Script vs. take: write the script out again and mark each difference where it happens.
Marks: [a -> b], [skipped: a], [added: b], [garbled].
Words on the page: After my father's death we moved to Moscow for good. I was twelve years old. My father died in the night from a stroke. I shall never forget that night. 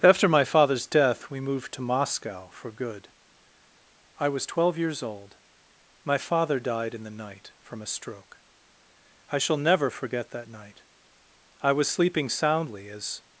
After my father's death we moved to Moscow for good. I was twelve years old. My father died in the night from a stroke. I shall never forget that night. [added: I was sleeping soundly as]